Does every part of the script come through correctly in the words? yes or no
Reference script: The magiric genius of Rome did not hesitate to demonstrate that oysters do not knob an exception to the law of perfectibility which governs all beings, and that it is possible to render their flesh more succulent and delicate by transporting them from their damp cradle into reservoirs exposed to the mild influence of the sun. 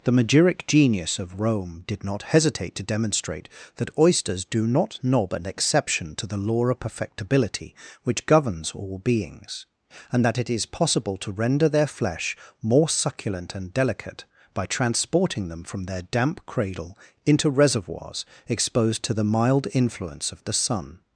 yes